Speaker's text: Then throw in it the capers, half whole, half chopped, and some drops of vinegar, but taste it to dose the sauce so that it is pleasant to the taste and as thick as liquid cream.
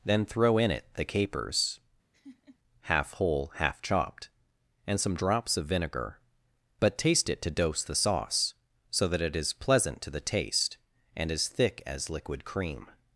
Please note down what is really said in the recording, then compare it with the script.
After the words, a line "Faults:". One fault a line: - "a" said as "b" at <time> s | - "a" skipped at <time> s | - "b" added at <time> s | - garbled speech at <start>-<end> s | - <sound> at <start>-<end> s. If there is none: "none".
Then throw in it the capers, half whole, half chopped, and some drops of vinegar, but taste it to dose the sauce so that it is pleasant to the taste and as thick as liquid cream.
Faults:
- laugh at 2.1-2.6 s